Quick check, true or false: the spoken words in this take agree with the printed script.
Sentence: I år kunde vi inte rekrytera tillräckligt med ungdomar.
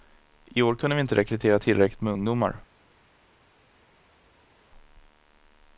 true